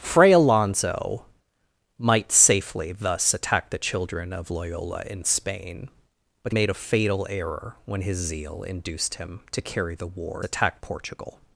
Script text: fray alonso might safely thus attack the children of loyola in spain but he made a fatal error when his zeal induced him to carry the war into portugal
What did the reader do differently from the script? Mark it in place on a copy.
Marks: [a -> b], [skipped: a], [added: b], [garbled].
fray alonso might safely thus attack the children of loyola in spain but [skipped: he] made a fatal error when his zeal induced him to carry the war [into -> attack] portugal